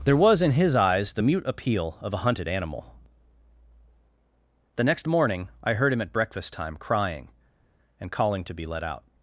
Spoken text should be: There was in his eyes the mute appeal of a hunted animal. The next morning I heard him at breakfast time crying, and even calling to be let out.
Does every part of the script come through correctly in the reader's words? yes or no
no